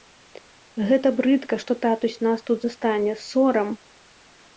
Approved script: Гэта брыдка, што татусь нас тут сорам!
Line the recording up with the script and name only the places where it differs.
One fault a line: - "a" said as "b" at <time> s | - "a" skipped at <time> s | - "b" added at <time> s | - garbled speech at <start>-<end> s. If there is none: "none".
- "застане" added at 2.7 s